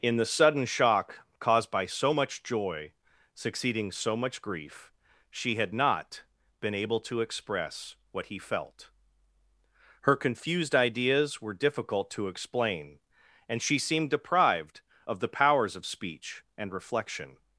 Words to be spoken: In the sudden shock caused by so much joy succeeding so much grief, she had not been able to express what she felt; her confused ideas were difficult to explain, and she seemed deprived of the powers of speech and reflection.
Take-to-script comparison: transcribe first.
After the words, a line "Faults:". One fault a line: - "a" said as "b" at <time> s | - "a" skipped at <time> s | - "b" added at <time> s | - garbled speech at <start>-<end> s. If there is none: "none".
In the sudden shock caused by so much joy succeeding so much grief, she had not been able to express what he felt; her confused ideas were difficult to explain, and she seemed deprived of the powers of speech and reflection.
Faults:
- "she" said as "he" at 8.3 s